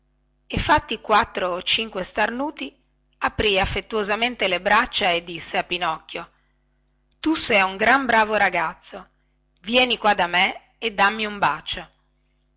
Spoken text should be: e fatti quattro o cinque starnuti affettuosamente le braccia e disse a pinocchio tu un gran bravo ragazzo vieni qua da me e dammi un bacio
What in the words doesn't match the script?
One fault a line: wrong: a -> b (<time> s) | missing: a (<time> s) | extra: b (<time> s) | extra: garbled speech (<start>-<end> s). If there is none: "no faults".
extra: aprì (3.2 s)
extra: sei (7.3 s)